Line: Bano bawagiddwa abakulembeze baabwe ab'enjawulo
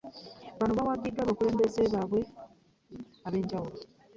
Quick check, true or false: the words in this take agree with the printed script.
true